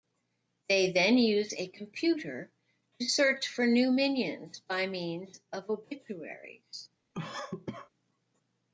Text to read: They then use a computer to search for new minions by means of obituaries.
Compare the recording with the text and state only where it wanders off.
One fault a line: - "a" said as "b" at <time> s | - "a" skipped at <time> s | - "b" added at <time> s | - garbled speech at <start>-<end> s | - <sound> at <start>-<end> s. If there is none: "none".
- cough at 7.1-7.9 s